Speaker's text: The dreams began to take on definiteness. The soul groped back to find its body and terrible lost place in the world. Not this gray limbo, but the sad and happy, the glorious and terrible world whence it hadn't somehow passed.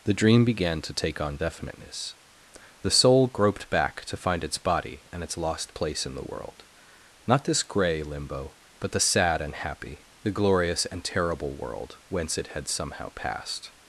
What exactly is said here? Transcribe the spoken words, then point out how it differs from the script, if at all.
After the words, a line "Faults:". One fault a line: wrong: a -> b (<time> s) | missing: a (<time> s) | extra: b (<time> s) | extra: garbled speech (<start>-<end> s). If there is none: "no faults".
The dream began to take on definiteness. The soul groped back to find its body and its lost place in the world. Not this gray limbo, but the sad and happy, the glorious and terrible world whence it had somehow passed.
Faults:
wrong: dreams -> dream (0.1 s)
wrong: terrible -> its (5.2 s)
wrong: hadn't -> had (12.5 s)